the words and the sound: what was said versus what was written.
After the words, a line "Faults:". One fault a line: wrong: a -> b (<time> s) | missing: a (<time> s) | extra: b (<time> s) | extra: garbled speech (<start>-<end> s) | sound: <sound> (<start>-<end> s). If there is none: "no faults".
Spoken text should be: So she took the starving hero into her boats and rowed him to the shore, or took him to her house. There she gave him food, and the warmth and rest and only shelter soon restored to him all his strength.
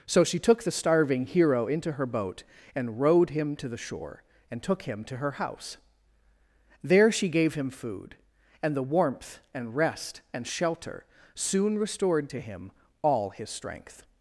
So she took the starving hero into her boat and rowed him to the shore, and took him to her house. There she gave him food, and the warmth and rest and shelter soon restored to him all his strength.
Faults:
wrong: boats -> boat (2.0 s)
wrong: or -> and (4.5 s)
missing: only (10.4 s)